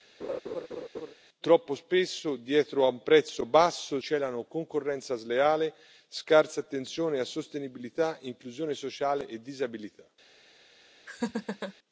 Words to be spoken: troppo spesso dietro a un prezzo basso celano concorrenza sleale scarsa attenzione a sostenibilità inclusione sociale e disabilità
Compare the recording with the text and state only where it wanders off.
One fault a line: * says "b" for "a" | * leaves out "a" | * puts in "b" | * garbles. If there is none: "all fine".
all fine